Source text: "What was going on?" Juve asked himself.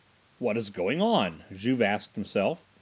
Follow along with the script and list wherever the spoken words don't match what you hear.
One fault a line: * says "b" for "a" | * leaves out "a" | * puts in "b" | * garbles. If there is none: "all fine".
* says "is" for "was"